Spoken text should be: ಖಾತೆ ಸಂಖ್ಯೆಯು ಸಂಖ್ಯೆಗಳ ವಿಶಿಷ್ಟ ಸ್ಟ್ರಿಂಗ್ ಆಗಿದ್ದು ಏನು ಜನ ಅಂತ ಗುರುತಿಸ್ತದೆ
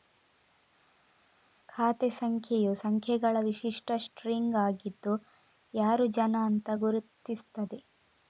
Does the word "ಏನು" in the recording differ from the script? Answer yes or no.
yes